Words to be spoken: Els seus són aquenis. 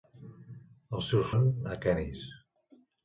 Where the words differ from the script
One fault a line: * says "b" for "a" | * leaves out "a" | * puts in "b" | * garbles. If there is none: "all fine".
all fine